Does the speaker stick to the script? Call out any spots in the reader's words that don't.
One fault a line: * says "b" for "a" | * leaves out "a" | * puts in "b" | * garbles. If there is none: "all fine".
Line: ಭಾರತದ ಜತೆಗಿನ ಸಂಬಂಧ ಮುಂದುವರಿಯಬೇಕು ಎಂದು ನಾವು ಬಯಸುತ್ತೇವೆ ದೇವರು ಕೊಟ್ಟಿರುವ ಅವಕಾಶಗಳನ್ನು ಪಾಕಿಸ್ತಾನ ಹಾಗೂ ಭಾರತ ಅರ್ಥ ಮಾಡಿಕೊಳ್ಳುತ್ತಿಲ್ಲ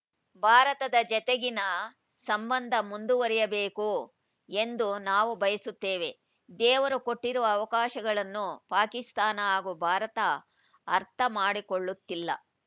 all fine